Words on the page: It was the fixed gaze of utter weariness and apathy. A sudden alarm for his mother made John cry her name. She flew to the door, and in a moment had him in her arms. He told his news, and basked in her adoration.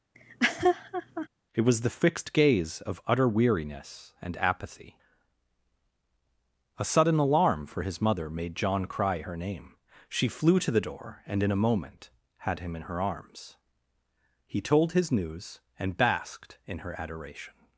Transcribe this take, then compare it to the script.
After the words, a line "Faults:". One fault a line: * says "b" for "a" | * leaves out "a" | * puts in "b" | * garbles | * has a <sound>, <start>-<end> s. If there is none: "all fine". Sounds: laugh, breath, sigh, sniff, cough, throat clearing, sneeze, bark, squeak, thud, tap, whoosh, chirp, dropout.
It was the fixed gaze of utter weariness and apathy. A sudden alarm for his mother made John cry her name. She flew to the door, and in a moment had him in her arms. He told his news, and basked in her adoration.
Faults:
* has a laugh, 0.1-1.3 s